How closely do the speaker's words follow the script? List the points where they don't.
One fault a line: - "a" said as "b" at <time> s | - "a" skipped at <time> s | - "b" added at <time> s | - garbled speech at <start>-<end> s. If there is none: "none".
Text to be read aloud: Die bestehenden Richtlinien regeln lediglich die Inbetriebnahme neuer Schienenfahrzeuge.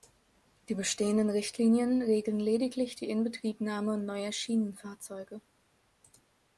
none